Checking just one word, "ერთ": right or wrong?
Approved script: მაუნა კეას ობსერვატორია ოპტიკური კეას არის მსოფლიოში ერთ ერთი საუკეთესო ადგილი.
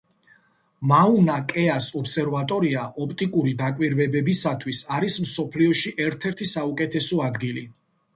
right